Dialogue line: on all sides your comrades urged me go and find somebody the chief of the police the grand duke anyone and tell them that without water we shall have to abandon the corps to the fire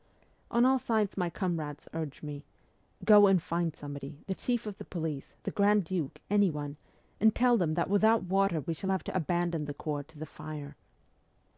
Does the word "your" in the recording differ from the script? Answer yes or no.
yes